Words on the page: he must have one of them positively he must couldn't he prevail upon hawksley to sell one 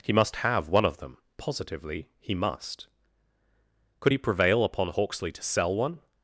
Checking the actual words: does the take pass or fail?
fail